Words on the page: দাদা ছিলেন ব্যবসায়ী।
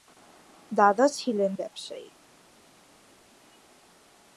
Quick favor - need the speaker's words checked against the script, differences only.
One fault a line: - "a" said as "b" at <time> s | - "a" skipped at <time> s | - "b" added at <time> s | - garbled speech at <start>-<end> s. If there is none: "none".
none